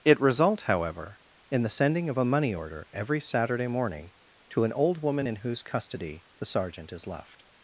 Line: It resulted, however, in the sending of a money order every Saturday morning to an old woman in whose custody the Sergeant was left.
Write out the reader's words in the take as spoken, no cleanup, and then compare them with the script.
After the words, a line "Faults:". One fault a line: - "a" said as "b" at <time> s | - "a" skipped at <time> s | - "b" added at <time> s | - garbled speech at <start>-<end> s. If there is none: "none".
It result, however, in the sending of a money order every Saturday morning to an old woman in whose custody the Sergeant is left.
Faults:
- "resulted" said as "result" at 0.2 s
- "was" said as "is" at 6.9 s